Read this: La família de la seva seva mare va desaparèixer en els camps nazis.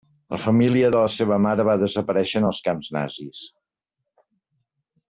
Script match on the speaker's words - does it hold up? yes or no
no